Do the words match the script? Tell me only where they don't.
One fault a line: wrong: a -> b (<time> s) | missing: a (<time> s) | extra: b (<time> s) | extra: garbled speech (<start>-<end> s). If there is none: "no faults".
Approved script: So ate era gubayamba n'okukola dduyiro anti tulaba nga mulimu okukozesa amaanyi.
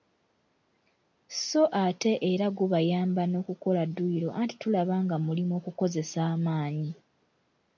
no faults